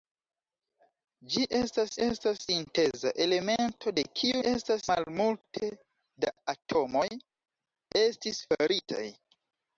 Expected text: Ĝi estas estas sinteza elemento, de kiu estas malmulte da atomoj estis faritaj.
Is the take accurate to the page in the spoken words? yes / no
yes